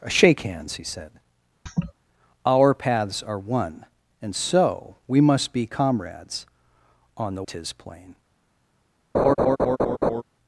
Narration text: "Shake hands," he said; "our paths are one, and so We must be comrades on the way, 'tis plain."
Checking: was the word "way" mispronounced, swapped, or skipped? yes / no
yes